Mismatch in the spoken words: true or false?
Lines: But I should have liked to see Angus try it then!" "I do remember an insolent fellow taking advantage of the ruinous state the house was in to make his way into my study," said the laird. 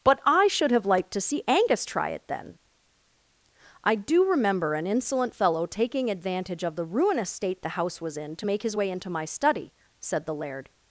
false